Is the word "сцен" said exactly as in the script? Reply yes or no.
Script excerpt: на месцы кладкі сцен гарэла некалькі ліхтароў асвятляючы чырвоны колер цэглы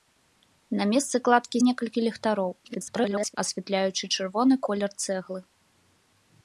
no